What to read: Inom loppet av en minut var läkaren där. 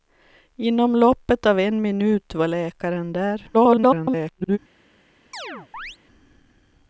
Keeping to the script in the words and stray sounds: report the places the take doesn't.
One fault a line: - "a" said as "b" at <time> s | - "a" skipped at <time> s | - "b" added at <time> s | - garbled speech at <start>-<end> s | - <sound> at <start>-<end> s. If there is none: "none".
- garbled speech at 3.5-4.6 s
- chirp at 5.3-6.0 s